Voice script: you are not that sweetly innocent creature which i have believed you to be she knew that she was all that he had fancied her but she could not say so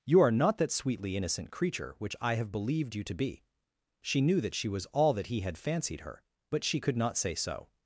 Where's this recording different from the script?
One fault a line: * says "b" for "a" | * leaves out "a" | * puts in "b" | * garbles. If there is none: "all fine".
all fine